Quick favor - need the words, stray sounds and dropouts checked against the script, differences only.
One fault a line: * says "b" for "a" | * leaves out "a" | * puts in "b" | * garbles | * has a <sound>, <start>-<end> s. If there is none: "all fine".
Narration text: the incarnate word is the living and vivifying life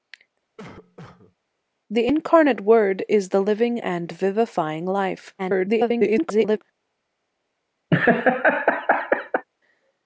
* has a cough, 0.6-1.4 s
* garbles
* has a laugh, 7.9-9.4 s